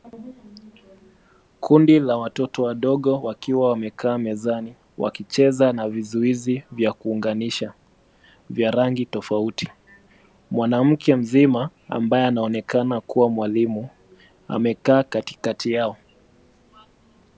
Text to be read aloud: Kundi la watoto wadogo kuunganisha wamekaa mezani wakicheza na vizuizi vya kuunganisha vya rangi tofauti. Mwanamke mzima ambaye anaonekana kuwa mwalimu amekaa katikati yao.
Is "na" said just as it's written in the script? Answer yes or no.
yes